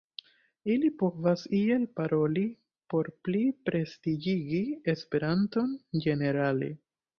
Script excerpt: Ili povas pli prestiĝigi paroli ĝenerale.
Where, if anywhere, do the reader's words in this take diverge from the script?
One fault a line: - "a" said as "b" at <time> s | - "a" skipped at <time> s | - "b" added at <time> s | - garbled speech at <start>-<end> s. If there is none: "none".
- "iel paroli por" added at 1.6 s
- "paroli" said as "esperanton" at 5.0 s